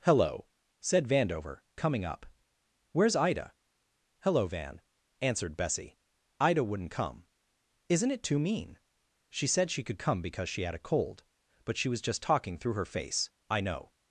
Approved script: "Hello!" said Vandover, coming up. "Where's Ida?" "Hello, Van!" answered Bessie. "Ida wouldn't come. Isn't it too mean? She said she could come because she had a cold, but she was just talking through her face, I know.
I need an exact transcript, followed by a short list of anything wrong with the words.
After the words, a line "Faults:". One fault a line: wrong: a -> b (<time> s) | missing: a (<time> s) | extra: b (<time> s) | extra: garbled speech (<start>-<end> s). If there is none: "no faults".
"Hello!" said Vandover, coming up. "Where's Ida?" "Hello, Van!" answered Bessie. "Ida wouldn't come. Isn't it too mean? She said she could come because she had a cold, but she was just talking through her face, I know.
Faults:
no faults